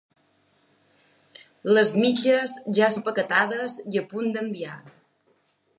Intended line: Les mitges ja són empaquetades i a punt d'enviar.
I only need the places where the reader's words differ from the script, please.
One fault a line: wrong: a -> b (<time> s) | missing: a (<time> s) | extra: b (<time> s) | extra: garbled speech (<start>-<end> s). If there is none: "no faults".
missing: són (2.9 s)